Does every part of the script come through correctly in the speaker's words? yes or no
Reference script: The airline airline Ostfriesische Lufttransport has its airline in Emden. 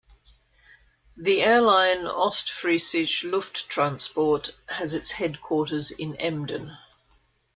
no